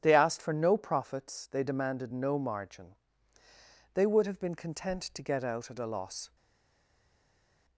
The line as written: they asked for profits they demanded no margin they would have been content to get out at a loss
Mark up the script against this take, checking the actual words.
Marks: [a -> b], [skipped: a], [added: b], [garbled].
they asked for [added: no] profits they demanded no margin they would have been content to get out at a loss